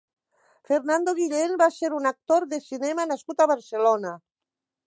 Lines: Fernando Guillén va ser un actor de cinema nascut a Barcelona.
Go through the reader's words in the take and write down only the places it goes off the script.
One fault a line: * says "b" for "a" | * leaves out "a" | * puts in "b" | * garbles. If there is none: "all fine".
all fine